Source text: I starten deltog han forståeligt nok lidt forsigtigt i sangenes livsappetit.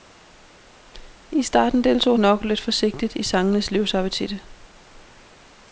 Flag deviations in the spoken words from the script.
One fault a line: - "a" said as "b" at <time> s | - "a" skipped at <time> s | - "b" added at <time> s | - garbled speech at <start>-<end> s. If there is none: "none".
- "han forståeligt" skipped at 2.2 s